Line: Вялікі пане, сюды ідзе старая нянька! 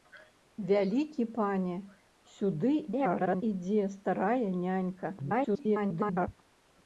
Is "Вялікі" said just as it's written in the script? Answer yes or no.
yes